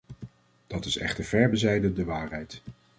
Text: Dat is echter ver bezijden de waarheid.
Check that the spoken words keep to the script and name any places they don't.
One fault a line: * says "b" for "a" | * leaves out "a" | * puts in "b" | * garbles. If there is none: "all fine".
all fine